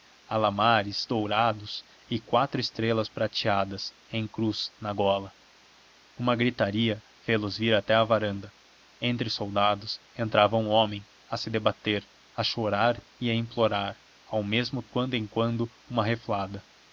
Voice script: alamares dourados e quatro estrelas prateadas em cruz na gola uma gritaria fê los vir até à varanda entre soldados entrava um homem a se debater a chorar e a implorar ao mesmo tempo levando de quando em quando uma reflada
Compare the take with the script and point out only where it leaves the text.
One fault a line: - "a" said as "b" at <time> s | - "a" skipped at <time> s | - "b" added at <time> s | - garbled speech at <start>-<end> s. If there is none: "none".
- "tempo levando de" skipped at 14.8 s